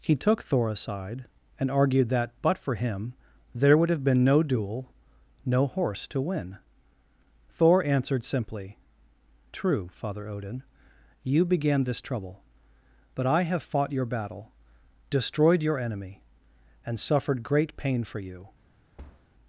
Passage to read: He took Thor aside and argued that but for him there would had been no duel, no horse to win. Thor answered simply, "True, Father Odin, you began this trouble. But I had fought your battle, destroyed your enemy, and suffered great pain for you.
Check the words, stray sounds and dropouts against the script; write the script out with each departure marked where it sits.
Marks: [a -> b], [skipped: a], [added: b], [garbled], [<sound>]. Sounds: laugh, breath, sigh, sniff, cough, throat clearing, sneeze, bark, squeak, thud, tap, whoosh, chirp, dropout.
He took Thor aside and argued that but for him there would [had -> have] been no duel, no horse to win. Thor answered simply, "True, Father Odin, you began this trouble. But I [had -> have] fought your battle, destroyed your enemy, and suffered great pain for you. [thud]